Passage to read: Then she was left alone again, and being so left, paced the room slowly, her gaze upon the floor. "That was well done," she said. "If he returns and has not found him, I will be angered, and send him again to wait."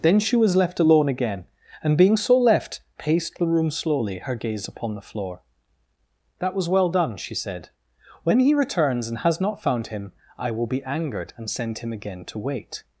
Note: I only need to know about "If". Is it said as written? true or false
false